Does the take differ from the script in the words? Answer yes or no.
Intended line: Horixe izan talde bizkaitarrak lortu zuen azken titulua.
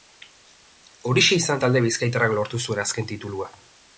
no